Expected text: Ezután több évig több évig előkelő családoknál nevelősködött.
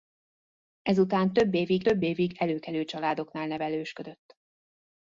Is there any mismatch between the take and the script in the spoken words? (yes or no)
no